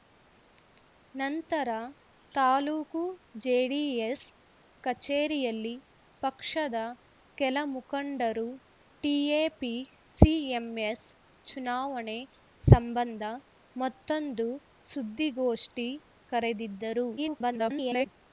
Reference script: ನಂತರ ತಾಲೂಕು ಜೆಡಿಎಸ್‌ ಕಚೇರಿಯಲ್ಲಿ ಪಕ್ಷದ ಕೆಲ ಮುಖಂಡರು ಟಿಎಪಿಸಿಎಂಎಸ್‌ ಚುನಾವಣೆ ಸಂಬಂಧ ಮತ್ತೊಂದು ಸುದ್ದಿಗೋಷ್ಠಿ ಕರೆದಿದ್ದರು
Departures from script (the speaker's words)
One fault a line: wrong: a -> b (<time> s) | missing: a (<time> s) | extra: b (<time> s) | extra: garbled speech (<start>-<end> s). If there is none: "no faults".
extra: garbled speech (17.2-18.1 s)